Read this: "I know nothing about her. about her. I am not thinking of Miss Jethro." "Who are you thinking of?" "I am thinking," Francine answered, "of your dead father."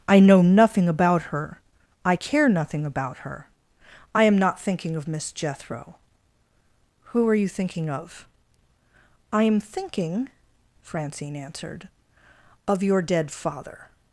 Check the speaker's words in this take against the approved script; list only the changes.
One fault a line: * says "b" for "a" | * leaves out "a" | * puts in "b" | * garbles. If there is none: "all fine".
* puts in "I care nothing"